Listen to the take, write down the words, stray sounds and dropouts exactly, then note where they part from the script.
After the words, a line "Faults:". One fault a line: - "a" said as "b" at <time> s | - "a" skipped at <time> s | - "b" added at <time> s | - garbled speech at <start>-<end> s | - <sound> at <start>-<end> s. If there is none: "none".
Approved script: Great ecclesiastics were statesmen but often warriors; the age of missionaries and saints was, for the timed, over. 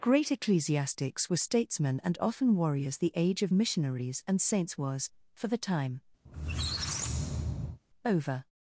Great ecclesiastics were statesmen and often warriors; the age of missionaries and saints was, for the time, over.
Faults:
- "but" said as "and" at 2.0 s
- "timed" said as "time" at 5.6 s
- squeak at 6.2-7.8 s